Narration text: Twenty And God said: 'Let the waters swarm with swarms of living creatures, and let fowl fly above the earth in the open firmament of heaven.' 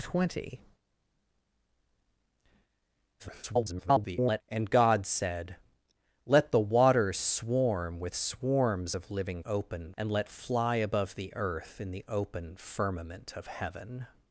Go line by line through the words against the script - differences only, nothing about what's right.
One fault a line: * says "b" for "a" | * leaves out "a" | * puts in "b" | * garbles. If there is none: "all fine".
* garbles
* says "open" for "creatures"
* leaves out "fowl"